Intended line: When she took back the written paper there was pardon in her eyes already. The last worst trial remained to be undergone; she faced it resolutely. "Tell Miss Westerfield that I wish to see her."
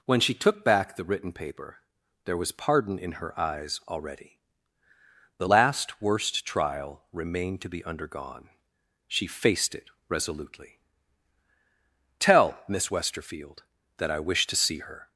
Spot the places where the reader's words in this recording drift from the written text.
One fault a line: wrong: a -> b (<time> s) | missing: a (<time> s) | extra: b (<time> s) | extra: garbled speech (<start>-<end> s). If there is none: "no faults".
no faults